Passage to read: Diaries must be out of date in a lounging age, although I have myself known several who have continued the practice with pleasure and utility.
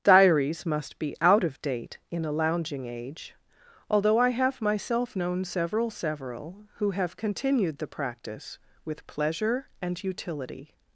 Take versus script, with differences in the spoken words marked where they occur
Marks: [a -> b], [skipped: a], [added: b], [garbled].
Diaries must be out of date in a lounging age, although I have myself known several [added: several] who have continued the practice with pleasure and utility.